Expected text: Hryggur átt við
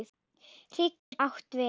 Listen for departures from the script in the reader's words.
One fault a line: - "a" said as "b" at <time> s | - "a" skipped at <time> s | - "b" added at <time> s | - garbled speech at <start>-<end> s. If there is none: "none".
none